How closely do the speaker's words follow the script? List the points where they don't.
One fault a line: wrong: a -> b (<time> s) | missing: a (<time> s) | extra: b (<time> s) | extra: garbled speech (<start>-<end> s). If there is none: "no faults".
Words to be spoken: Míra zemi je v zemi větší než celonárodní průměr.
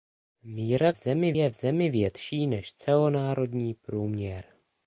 no faults